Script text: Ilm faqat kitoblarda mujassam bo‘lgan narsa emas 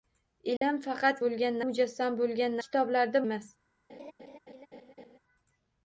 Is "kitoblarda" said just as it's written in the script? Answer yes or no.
no